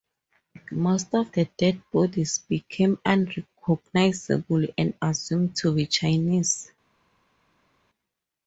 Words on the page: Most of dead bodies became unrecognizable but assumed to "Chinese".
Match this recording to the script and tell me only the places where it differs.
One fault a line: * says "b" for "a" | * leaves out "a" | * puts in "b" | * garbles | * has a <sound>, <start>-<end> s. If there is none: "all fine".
* puts in "the"
* says "and" for "but"
* puts in "be"